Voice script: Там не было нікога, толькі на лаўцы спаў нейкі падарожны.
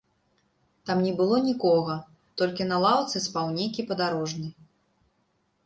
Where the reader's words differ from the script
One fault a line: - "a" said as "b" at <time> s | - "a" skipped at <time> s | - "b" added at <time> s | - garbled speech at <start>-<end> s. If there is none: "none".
none